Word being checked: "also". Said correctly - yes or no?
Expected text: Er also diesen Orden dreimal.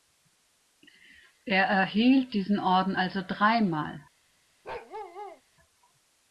no